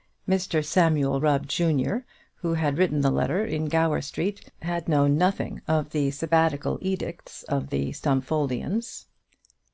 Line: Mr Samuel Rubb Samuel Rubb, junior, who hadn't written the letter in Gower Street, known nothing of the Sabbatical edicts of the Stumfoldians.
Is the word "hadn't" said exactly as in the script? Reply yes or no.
no